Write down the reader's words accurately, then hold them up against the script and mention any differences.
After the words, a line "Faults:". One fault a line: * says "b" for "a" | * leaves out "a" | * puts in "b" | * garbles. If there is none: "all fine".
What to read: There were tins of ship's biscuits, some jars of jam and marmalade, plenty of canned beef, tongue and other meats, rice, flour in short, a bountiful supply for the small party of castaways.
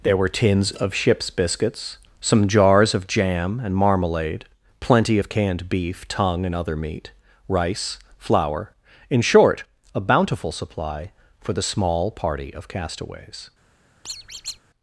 There were tins of ship's biscuits, some jars of jam and marmalade, plenty of canned beef, tongue and other meat, rice, flour in short, a bountiful supply for the small party of castaways.
Faults:
* says "meat" for "meats"